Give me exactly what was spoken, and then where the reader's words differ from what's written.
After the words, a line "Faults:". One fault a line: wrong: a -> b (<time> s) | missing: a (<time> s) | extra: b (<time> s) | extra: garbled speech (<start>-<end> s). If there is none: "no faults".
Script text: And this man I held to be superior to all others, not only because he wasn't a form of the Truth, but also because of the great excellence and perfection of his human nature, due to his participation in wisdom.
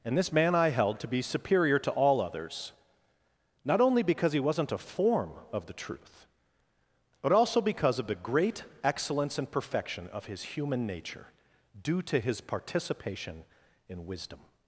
And this man I held to be superior to all others, not only because he wasn't a form of the Truth, but also because of the great excellence and perfection of his human nature, due to his participation in wisdom.
Faults:
no faults